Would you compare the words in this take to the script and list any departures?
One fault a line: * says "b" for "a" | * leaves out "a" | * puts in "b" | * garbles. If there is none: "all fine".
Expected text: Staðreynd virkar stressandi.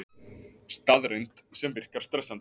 * puts in "sem"